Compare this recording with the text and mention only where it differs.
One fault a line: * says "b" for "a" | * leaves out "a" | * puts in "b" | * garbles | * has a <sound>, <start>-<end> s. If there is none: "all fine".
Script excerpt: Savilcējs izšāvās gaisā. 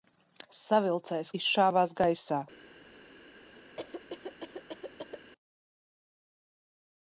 * has a cough, 3.8-5.3 s